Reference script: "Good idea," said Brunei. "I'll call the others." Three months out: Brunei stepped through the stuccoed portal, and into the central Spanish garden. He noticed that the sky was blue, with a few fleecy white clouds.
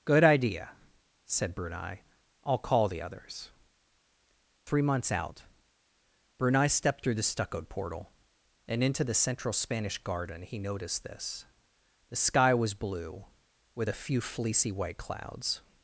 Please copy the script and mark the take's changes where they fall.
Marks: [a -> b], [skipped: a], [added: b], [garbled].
"Good idea," said Brunei. "I'll call the others." Three months out: Brunei stepped through the stuccoed portal, and into the central Spanish garden. He noticed [that -> this] the sky was blue, with a few fleecy white clouds.